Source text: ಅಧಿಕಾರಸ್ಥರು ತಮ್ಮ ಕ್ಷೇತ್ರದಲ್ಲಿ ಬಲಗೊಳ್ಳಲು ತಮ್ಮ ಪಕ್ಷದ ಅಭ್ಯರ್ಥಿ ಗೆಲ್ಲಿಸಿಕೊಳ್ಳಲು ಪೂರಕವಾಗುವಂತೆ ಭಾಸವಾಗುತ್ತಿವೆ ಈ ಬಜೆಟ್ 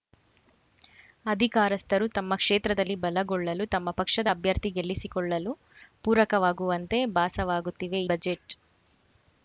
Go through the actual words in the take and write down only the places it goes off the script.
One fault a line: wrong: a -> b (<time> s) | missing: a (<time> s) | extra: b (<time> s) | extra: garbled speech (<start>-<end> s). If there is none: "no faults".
missing: ಈ (8.0 s)